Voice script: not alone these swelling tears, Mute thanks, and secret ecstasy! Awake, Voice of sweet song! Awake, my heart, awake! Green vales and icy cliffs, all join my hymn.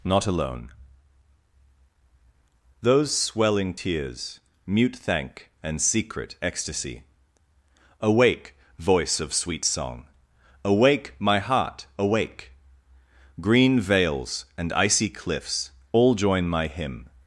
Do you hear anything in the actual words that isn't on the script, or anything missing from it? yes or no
yes